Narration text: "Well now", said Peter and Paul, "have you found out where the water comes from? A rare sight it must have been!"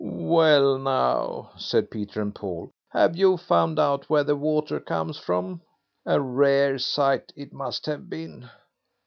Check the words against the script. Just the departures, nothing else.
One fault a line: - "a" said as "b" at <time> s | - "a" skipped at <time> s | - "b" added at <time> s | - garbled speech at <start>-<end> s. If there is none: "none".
none